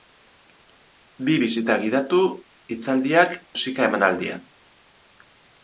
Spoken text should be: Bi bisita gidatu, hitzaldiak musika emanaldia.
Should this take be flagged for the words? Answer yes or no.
no